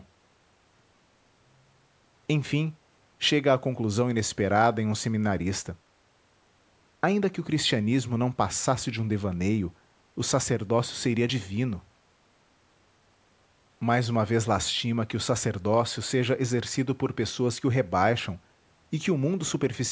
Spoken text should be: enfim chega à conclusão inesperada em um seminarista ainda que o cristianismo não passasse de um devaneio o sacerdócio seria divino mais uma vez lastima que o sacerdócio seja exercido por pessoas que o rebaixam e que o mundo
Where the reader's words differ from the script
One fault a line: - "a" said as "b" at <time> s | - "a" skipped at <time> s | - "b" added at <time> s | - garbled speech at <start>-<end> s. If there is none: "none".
none